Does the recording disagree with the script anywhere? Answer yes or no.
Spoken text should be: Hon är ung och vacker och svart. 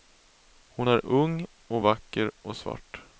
no